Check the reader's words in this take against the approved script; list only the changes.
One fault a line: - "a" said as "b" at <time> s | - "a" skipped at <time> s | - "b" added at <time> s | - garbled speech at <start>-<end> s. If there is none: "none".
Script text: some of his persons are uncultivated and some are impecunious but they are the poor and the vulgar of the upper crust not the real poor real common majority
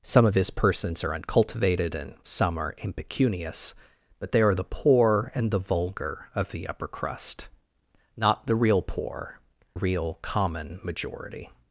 none